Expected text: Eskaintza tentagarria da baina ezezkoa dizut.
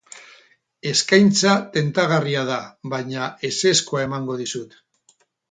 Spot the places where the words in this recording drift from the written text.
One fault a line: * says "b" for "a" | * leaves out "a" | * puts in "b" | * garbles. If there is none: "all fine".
* puts in "emango"